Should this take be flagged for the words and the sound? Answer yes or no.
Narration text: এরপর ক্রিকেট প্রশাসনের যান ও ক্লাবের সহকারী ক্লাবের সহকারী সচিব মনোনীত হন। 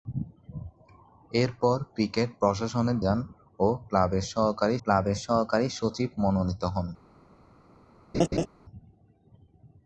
yes